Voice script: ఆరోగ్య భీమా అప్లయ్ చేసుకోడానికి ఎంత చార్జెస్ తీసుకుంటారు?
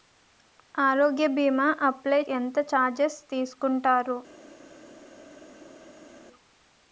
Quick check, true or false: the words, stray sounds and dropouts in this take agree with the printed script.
false